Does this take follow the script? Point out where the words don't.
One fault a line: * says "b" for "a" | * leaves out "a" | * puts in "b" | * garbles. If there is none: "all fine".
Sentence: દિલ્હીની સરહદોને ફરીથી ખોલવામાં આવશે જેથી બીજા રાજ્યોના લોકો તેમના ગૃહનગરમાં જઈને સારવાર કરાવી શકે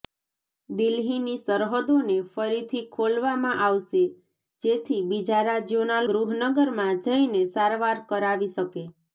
* leaves out "લોકો તેમના"